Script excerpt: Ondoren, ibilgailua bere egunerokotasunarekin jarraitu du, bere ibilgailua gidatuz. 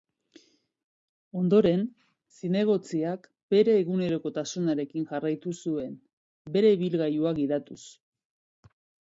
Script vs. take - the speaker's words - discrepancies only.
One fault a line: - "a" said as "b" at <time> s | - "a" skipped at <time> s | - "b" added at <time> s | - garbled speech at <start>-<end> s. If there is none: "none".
- "ibilgailua" said as "zinegotziak" at 2.4 s
- "du" said as "zuen" at 5.6 s